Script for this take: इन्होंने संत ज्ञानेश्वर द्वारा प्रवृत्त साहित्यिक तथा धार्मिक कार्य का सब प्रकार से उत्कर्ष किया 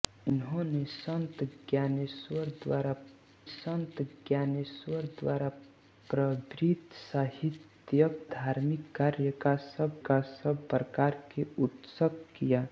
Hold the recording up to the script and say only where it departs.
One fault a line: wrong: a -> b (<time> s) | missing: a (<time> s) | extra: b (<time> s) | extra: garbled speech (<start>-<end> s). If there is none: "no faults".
extra: संत ज्ञानेश्वर द्वारा (3.4 s)
missing: तथा (8.2 s)
extra: का सब (10.1 s)